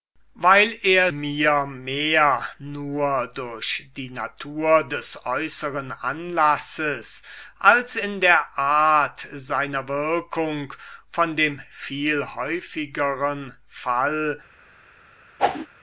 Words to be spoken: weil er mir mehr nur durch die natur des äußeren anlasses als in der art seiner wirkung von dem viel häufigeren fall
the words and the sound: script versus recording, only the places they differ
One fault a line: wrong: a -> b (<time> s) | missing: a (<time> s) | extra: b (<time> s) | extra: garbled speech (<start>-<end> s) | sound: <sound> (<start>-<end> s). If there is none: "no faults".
sound: whoosh (15.4-15.7 s)